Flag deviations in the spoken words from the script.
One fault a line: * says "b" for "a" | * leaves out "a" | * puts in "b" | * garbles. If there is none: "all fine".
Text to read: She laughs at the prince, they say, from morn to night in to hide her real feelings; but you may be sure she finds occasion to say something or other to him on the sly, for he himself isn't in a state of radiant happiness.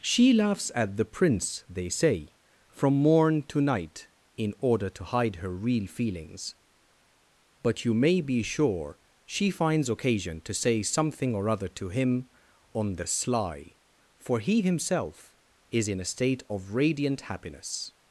* puts in "order"
* says "is" for "isn't"